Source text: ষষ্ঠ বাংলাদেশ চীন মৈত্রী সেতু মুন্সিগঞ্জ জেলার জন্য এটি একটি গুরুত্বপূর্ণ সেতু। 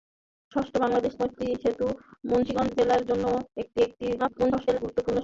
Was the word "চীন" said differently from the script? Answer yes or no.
yes